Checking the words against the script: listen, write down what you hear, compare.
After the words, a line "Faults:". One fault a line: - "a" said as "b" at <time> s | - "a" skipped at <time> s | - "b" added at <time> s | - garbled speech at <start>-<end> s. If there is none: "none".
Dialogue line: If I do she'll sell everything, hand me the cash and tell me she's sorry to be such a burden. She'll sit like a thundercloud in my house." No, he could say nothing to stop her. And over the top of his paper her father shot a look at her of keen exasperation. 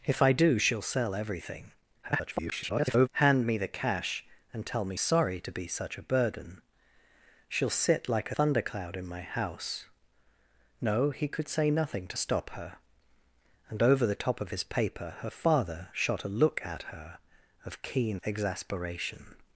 If I do she'll sell everything, [garbled] hand me the cash and tell me sorry to be such a burden. She'll sit like thundercloud in my house." No, he could say nothing to stop her. And over the top of his paper her father shot a look at her of keen exasperation.
Faults:
- garbled speech at 2.0-3.1 s
- "she's" skipped at 5.0 s
- "a" skipped at 8.3 s